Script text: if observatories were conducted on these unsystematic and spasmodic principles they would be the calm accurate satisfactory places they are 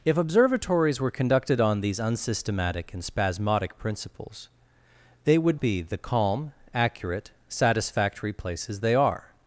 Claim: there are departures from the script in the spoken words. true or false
false